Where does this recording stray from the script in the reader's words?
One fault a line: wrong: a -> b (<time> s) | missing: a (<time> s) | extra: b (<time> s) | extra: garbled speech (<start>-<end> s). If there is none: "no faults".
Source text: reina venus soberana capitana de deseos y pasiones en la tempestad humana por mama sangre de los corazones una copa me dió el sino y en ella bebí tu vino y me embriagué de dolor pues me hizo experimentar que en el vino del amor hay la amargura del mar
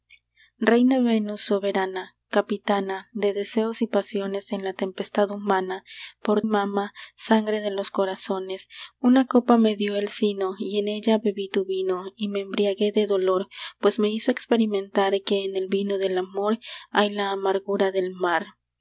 no faults